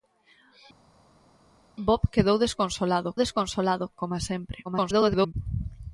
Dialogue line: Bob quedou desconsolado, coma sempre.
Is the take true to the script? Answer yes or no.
no